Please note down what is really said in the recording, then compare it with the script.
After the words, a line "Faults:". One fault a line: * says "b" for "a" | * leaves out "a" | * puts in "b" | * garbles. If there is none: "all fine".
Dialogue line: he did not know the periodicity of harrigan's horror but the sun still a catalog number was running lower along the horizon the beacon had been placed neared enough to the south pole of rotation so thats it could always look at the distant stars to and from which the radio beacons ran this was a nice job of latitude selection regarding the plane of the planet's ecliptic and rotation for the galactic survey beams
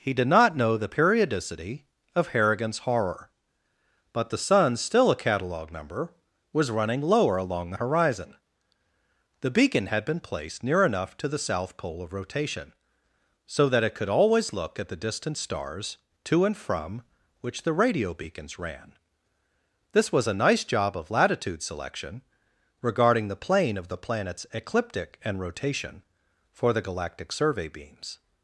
he did not know the periodicity of harrigan's horror but the sun still a catalog number was running lower along the horizon the beacon had been placed near enough to the south pole of rotation so that it could always look at the distant stars to and from which the radio beacons ran this was a nice job of latitude selection regarding the plane of the planet's ecliptic and rotation for the galactic survey beams
Faults:
* says "near" for "neared"
* says "that" for "thats"